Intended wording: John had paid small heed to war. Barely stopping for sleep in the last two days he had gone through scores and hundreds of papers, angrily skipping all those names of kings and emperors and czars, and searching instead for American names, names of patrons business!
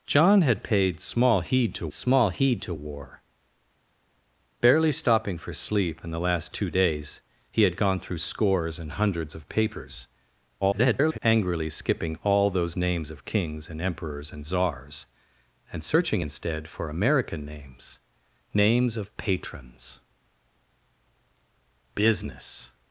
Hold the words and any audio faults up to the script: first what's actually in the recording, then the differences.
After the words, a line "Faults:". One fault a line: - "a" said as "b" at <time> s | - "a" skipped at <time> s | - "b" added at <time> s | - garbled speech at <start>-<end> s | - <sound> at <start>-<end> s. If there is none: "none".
John had paid small heed to small heed to war. Barely stopping for sleep in the last two days he had gone through scores and hundreds of papers, [garbled] angrily skipping all those names of kings and emperors and czars, and searching instead for American names, names of patrons business!
Faults:
- "small heed to" added at 1.9 s
- garbled speech at 10.6-11.2 s